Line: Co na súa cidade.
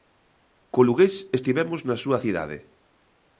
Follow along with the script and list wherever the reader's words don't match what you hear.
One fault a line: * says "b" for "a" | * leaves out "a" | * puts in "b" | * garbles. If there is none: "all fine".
* puts in "lugués estivemos"